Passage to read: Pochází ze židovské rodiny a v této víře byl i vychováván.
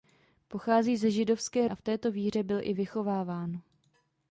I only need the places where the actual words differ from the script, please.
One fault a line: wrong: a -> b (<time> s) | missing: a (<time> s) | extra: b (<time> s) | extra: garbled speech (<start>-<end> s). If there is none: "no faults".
missing: rodiny (1.7 s)